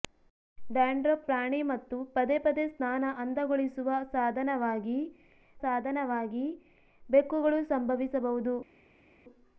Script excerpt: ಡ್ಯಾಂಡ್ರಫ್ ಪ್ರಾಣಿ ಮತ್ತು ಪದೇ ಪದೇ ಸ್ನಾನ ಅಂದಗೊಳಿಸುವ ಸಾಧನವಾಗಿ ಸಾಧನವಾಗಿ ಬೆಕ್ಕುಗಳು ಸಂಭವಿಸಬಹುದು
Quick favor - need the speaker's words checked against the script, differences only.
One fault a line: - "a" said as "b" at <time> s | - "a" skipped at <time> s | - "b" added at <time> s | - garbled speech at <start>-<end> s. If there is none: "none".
none